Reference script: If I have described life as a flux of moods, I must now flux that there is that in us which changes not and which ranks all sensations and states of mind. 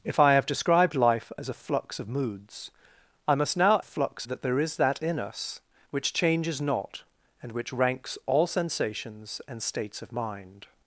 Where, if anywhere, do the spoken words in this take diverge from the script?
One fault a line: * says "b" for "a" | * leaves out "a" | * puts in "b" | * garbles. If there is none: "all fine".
all fine